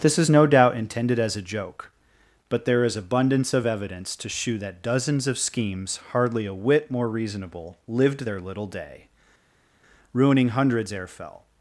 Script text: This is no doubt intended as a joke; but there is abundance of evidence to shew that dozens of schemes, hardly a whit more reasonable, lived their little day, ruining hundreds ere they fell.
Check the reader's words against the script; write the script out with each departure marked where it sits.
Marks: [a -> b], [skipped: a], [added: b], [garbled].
This is no doubt intended as a joke; but there is abundance of evidence to shew that dozens of schemes, hardly a whit more reasonable, lived their little day, ruining hundreds ere [skipped: they] fell.